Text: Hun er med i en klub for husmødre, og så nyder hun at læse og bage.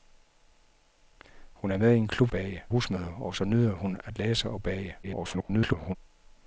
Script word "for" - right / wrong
wrong